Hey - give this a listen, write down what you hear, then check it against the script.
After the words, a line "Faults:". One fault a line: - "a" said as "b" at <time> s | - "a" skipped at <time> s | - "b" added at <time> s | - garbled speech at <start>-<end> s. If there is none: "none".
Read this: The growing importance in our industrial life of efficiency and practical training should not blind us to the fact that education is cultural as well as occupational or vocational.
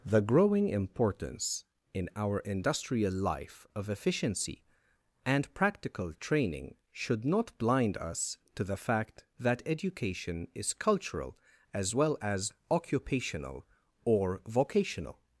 The growing importance in our industrial life of efficiency and practical training should not blind us to the fact that education is cultural as well as occupational or vocational.
Faults:
none